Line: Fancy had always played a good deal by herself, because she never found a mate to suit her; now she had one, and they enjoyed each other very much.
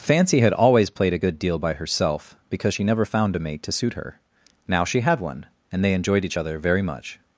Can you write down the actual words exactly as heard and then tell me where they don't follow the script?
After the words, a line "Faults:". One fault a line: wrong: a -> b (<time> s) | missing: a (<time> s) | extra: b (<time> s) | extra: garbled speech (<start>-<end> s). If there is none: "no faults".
Fancy had always played a good deal by herself, because she never found a mate to suit her; now she had one, and they enjoyed each other very much.
Faults:
no faults